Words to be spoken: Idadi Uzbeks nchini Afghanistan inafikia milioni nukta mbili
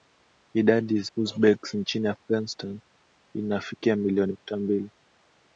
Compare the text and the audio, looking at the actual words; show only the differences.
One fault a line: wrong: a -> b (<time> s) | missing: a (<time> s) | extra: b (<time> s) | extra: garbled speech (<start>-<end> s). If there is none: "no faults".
no faults